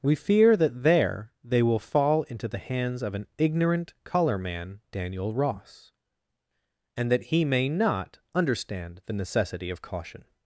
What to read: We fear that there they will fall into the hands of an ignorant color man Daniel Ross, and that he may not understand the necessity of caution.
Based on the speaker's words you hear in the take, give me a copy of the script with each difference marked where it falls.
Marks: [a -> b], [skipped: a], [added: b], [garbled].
We fear that there they will fall into the hands of an ignorant color man Daniel Ross, and that he may not understand the necessity of caution.